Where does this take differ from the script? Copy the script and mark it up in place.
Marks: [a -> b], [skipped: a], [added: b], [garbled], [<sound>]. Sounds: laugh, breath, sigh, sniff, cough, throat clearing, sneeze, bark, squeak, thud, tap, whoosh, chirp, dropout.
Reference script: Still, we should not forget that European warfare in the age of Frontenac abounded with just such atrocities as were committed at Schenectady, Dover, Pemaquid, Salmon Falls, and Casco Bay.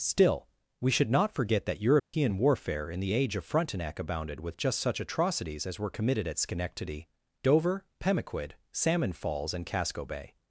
Still, we should not forget that European [dropout] warfare in the age of Frontenac abounded with just such atrocities as were committed at Schenectady, Dover, Pemaquid, Salmon Falls, and Casco Bay.